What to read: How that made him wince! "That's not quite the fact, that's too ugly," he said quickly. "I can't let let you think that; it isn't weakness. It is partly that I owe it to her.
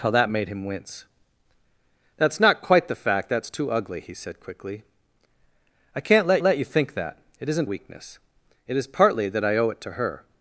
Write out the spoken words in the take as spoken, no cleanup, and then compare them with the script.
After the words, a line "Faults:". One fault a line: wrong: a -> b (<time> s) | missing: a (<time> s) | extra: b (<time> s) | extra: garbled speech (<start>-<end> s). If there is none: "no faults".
How that made him wince! "That's not quite the fact, that's too ugly," he said quickly. "I can't let let you think that; it isn't weakness. It is partly that I owe it to her.
Faults:
no faults